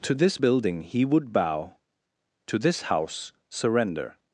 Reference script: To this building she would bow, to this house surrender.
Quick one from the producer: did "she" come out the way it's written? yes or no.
no